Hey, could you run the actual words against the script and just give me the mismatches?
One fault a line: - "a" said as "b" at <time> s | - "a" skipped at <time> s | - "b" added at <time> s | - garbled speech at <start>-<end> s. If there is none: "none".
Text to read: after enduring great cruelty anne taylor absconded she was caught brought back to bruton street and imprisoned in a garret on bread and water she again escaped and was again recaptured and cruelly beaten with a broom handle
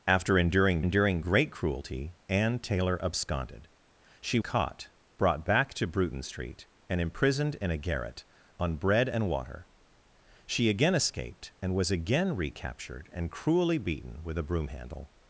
- "enduring" added at 0.8 s
- "was" skipped at 4.4 s